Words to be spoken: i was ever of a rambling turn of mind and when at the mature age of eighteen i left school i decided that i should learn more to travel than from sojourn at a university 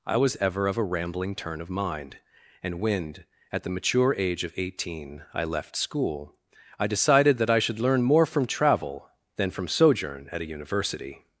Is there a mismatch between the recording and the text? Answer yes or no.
yes